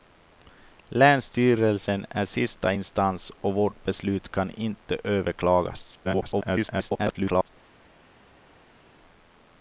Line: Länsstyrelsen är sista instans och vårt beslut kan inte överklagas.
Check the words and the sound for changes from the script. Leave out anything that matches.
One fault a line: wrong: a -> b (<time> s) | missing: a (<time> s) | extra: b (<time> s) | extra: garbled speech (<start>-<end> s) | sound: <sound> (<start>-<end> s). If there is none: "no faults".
extra: garbled speech (6.0-7.5 s)